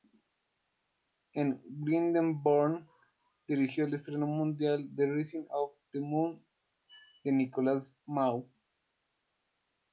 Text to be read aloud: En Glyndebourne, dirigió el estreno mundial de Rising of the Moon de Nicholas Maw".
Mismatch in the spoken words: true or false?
false